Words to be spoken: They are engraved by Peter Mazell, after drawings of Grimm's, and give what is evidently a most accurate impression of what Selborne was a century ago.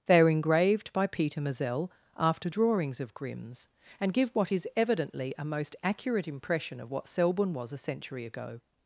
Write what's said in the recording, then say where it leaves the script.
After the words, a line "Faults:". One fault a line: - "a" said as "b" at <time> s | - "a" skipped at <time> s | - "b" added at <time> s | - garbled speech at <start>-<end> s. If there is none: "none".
They are engraved by Peter Mazell, after drawings of Grimm's, and give what is evidently a most accurate impression of what Selborne was a century ago.
Faults:
none